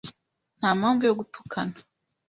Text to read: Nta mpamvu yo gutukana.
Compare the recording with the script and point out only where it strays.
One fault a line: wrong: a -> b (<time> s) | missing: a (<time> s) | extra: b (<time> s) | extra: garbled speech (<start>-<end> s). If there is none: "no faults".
no faults